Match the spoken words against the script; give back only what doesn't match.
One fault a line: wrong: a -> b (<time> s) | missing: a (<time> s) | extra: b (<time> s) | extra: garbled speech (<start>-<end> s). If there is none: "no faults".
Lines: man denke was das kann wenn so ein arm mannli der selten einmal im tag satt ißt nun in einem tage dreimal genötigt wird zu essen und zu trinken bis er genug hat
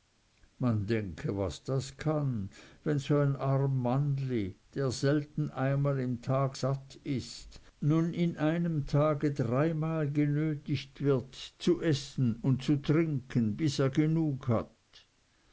no faults